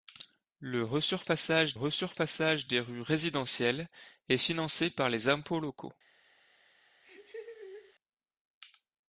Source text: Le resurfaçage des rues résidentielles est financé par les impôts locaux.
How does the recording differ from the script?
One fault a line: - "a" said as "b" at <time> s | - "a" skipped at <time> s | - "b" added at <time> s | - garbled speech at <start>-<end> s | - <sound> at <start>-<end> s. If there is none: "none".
- "resurfaçage" added at 1.7 s
- laugh at 7.0-7.9 s